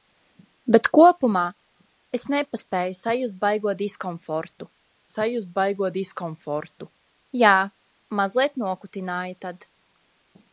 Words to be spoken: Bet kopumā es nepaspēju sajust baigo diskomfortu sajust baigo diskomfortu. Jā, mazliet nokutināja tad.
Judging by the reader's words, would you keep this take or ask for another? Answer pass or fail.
pass